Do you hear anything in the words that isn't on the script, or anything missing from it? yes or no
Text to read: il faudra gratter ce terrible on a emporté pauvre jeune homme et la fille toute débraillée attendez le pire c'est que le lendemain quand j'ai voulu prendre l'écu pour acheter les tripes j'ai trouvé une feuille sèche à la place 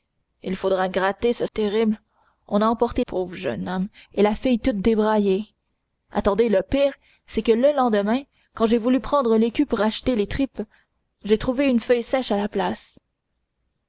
no